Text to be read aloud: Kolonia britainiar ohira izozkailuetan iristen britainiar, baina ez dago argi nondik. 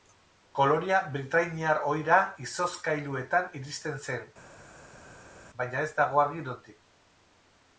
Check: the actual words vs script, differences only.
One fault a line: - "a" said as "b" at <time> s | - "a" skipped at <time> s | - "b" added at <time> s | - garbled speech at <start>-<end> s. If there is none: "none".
- "britainiar" said as "zen" at 4.1 s